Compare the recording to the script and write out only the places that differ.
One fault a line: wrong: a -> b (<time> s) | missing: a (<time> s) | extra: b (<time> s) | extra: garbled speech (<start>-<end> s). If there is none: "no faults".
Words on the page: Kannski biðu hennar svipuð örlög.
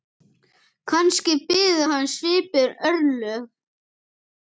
wrong: hennar -> hans (1.9 s)